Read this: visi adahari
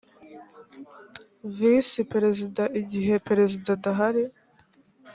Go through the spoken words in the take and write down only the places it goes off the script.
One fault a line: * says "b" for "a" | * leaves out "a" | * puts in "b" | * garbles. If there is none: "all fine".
* puts in "perezida igihe perezida"